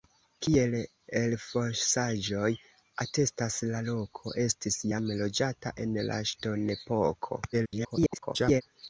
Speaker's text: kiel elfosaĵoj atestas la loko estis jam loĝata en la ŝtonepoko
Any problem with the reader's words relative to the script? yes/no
yes